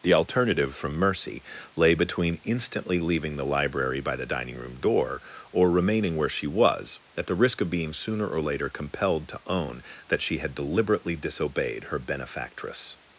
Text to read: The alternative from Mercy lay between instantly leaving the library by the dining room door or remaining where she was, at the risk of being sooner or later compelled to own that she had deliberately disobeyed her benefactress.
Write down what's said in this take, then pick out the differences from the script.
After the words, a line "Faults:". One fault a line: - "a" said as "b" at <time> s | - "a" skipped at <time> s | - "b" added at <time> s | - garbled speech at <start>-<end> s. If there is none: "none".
The alternative from Mercy lay between instantly leaving the library by the dining room door or remaining where she was, at the risk of being sooner or later compelled to own that she had deliberately disobeyed her benefactress.
Faults:
none